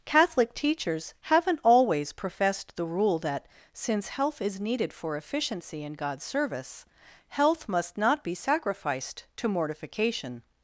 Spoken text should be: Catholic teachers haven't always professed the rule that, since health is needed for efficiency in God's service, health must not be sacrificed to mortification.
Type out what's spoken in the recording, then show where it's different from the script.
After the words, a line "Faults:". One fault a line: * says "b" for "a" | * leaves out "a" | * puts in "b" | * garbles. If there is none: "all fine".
Catholic teachers haven't always professed the rule that, since health is needed for efficiency in God's service, health must not be sacrificed to mortification.
Faults:
all fine